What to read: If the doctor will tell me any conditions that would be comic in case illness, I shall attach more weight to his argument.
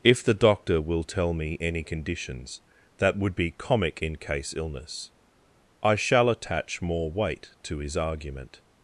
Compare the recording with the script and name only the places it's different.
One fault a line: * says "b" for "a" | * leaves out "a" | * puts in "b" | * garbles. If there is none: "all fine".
all fine